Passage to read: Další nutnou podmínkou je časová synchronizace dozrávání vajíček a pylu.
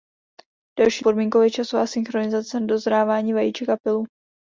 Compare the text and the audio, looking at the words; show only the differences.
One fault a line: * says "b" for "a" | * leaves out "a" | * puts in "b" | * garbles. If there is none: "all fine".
* leaves out "nutnou"